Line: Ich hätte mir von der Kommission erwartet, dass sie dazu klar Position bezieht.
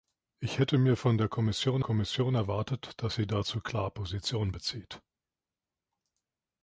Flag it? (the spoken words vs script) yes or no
yes